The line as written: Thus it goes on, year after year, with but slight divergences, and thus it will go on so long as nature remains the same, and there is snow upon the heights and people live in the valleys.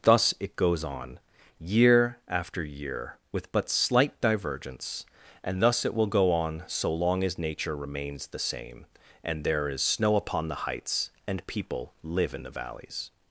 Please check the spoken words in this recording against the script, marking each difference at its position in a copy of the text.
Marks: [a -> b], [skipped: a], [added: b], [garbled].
Thus it goes on, year after year, with but slight [divergences, -> divergence] and thus it will go on so long as nature remains the same, and there is snow upon the heights and people live in the valleys.